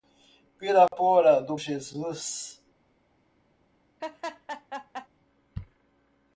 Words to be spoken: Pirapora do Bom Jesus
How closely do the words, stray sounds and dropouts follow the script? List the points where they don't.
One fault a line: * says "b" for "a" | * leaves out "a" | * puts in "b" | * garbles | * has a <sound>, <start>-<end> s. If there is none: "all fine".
* has a dropout, 0.9-0.9 s
* leaves out "Bom"
* has a laugh, 4.0-5.1 s